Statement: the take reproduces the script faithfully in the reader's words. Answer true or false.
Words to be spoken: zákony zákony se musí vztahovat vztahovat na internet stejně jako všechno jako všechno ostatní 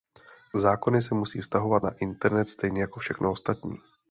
false